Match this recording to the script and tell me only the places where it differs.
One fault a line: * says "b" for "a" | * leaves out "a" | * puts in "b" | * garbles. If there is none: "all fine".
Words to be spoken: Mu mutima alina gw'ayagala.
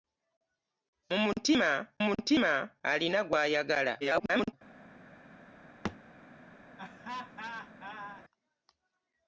* puts in "mutima"
* garbles